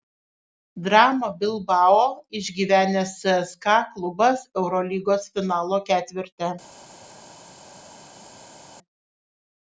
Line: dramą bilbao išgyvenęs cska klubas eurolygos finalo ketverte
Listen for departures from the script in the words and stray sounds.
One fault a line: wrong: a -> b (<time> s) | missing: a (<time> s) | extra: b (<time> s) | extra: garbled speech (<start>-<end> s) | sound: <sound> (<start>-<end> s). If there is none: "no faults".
no faults